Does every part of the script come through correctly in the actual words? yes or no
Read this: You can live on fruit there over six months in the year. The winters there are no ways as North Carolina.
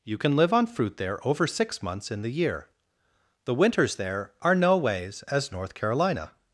yes